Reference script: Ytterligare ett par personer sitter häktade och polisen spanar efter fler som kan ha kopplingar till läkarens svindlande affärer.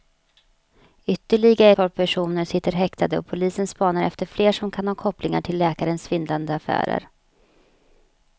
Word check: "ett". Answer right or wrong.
wrong